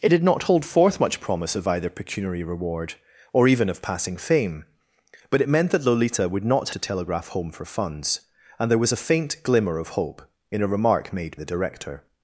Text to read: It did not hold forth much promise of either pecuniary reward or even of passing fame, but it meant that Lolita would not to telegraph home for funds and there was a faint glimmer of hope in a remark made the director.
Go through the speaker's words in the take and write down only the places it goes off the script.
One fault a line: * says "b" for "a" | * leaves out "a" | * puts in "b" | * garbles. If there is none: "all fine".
all fine